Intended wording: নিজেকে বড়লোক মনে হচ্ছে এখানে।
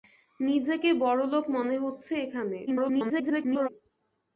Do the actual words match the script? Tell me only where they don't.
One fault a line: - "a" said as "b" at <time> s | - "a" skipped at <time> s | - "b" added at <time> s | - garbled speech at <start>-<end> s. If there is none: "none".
- garbled speech at 2.7-3.7 s